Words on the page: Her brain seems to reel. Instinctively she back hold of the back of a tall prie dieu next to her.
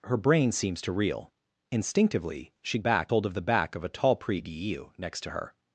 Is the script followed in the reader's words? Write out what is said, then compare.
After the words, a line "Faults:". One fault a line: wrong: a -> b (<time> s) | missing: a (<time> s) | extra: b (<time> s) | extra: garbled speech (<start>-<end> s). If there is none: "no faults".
Her brain seems to reel. Instinctively she back hold of the back of a tall prie dieu next to her.
Faults:
no faults